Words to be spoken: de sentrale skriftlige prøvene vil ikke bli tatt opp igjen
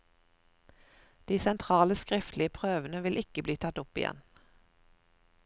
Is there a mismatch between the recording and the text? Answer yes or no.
no